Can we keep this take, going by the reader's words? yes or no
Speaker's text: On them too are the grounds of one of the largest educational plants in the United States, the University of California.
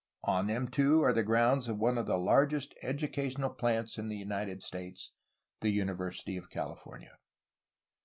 yes